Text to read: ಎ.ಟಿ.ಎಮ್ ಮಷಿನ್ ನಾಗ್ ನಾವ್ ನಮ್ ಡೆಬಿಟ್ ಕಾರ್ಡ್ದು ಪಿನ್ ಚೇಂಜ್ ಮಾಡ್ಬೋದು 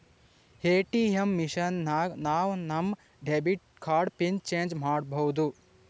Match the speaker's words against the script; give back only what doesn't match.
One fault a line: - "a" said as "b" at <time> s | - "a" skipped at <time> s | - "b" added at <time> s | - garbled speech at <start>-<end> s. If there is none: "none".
none